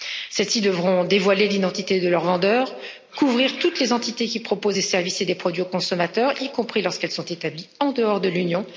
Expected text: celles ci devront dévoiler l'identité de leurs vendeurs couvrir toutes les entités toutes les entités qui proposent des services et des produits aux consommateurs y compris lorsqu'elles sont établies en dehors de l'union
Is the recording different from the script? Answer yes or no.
yes